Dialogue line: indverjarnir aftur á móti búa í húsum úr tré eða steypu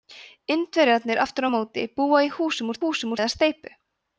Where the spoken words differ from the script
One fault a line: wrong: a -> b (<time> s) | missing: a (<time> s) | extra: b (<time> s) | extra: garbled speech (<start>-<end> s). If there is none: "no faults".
wrong: tré -> húsum (2.8 s)